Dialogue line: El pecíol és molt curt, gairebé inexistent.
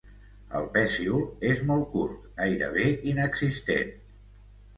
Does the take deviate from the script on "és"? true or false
false